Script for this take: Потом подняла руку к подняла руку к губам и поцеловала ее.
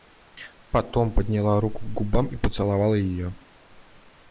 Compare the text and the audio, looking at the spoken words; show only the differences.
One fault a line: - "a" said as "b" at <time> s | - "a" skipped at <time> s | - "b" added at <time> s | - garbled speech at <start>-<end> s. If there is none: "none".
- "подняла руку к" skipped at 2.0 s